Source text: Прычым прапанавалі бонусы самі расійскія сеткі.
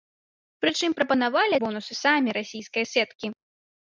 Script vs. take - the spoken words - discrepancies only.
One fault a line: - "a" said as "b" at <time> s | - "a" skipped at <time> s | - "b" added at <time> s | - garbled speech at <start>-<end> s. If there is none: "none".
none